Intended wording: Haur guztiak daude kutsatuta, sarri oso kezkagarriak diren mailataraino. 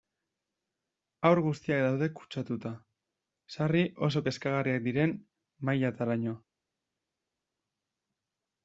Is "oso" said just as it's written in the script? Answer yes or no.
yes